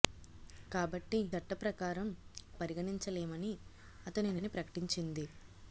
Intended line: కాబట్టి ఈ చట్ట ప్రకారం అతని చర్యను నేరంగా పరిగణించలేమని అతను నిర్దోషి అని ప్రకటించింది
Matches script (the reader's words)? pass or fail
fail